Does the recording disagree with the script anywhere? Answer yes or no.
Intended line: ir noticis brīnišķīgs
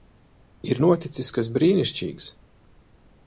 yes